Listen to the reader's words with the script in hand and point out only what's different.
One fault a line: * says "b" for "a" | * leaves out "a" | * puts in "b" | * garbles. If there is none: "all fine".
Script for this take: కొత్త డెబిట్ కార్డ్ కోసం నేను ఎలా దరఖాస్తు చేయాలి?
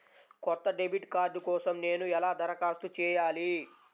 all fine